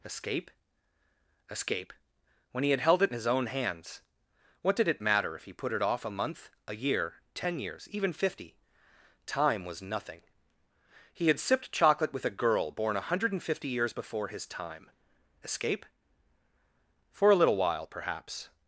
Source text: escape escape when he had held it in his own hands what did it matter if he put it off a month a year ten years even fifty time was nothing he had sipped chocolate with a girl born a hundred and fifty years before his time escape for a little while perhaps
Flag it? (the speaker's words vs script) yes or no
no